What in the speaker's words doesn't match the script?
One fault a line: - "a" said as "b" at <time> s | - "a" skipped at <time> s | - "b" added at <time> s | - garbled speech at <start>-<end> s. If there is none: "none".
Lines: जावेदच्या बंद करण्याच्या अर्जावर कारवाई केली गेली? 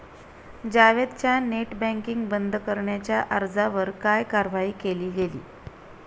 - "नेट बँकिंग" added at 1.4 s
- "काय" added at 4.0 s